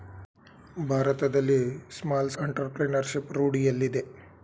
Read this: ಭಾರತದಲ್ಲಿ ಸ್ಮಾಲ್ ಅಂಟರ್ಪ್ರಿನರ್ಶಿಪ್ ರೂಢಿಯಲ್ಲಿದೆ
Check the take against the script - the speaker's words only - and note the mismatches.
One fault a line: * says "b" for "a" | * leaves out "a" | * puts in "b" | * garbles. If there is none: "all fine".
all fine